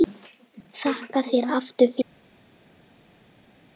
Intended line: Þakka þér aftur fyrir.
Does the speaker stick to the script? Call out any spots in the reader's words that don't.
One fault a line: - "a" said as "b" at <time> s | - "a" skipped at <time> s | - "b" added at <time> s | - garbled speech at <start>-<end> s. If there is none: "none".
none